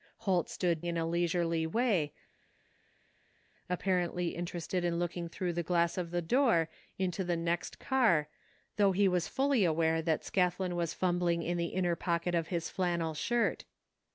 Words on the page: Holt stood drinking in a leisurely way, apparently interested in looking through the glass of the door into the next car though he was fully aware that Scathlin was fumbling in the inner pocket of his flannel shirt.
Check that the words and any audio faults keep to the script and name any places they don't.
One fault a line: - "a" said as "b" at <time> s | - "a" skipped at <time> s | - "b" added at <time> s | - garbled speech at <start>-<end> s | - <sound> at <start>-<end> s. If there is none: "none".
- "drinking" skipped at 0.8 s